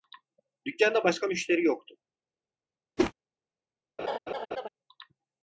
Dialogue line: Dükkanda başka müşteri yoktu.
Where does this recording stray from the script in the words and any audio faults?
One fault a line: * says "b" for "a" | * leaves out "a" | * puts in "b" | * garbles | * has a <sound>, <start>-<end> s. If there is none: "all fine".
* has a whoosh, 3.0-3.1 s
* has a laugh, 4.0-4.7 s